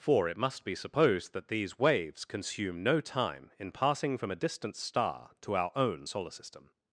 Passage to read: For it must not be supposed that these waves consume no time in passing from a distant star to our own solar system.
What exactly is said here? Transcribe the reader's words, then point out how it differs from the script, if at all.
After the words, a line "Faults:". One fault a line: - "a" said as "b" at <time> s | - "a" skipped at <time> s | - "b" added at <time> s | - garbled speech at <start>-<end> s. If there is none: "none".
For it must be supposed that these waves consume no time in passing from a distant star to our own solar system.
Faults:
- "not" skipped at 0.6 s